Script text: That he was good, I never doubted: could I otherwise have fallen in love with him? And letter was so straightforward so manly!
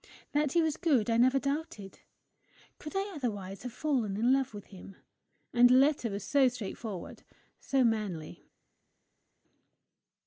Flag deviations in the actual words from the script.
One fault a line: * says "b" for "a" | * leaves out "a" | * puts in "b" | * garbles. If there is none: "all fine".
all fine